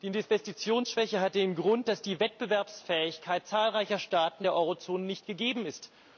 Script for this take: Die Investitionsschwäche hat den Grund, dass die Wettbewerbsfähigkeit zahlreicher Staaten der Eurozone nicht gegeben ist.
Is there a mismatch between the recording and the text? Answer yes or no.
no